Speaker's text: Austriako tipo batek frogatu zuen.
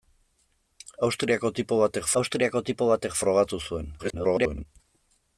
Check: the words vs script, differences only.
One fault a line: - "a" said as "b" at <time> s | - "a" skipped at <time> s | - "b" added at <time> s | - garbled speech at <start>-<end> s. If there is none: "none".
- "austriako tipo batek" added at 2.2 s
- garbled speech at 4.0-4.7 s